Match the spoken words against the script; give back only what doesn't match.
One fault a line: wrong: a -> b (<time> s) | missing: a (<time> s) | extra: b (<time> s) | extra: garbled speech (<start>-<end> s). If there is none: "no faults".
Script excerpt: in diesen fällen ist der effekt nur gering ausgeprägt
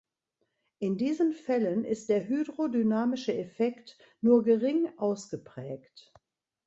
extra: hydrodynamische (2.3 s)